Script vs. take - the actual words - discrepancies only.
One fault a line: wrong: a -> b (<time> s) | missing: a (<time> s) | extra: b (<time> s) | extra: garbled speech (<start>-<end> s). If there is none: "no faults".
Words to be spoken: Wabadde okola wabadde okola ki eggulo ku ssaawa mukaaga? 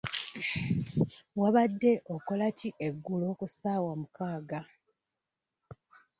missing: wabadde okola (2.5 s)